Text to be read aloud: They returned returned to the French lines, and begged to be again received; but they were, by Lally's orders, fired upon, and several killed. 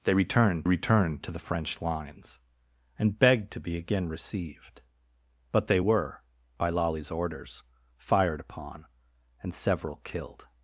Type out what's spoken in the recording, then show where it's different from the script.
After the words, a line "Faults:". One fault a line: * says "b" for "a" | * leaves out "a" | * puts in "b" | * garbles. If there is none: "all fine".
They returned returned to the French lines, and begged to be again received; but they were, by Lally's orders, fired upon, and several killed.
Faults:
all fine